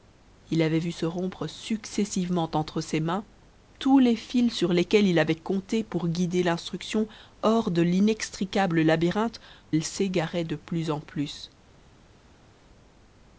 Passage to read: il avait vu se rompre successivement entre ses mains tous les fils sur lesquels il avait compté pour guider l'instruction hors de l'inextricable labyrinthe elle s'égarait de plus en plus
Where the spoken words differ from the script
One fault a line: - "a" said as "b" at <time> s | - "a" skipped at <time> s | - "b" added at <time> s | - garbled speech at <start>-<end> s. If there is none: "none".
none